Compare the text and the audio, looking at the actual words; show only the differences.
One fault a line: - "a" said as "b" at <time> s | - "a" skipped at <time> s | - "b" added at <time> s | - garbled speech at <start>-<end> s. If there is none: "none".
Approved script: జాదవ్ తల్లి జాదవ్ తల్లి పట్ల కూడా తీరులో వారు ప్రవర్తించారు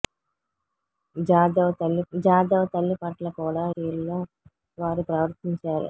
none